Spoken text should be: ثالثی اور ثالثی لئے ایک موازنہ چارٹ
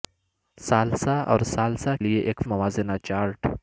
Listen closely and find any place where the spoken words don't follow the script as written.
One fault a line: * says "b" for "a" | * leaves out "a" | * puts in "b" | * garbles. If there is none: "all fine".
all fine